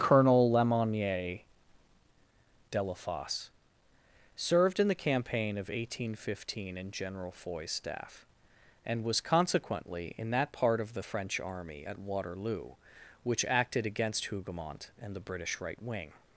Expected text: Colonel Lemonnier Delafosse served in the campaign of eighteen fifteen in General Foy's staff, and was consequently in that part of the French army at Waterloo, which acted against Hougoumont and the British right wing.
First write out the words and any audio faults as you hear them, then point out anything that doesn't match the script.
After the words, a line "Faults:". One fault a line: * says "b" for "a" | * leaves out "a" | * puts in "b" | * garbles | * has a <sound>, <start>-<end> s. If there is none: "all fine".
Colonel Lemonnier Delafosse served in the campaign of eighteen fifteen in General Foy's staff, and was consequently in that part of the French army at Waterloo, which acted against Hougoumont and the British right wing.
Faults:
all fine